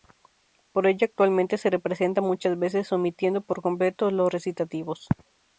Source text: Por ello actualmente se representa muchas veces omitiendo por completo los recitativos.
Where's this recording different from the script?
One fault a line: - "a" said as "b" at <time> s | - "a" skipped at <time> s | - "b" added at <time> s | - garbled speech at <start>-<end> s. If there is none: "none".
none